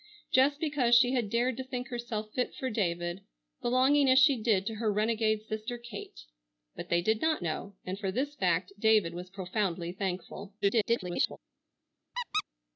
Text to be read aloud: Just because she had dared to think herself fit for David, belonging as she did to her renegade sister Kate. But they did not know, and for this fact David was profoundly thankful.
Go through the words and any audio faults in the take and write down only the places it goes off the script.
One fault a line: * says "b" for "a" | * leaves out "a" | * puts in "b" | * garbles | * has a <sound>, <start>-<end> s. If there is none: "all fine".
* garbles
* has a squeak, 12.1-12.4 s